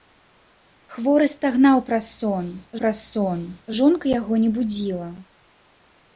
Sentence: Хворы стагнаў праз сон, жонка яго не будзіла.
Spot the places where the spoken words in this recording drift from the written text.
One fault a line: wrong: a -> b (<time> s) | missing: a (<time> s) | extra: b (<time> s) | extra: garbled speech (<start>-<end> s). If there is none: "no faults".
extra: праз сон (2.8 s)